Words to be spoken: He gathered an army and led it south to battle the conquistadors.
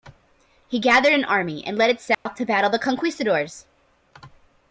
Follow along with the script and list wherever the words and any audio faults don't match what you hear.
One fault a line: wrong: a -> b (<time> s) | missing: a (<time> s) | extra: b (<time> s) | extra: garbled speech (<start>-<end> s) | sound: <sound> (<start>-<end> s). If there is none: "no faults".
sound: dropout (2.1-2.3 s)